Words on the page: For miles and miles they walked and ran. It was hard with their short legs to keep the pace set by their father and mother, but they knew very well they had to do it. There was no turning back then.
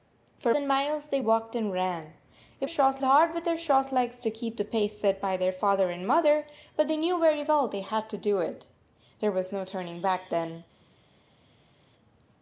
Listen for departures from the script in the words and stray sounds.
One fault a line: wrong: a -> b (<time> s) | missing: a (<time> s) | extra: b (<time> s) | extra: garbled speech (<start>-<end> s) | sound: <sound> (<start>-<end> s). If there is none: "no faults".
missing: miles (0.6 s)
wrong: was -> short (2.7 s)